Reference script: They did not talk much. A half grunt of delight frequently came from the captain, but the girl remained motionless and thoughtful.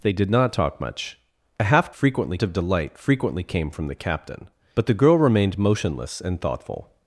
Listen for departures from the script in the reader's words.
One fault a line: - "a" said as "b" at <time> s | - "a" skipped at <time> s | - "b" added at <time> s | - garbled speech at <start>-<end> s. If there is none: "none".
- "grunt" said as "frequently" at 1.9 s